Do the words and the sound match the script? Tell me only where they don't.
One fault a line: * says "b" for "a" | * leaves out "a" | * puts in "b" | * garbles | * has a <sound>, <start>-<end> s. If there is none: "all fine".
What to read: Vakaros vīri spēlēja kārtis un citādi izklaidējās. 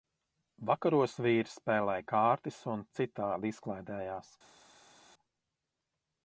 all fine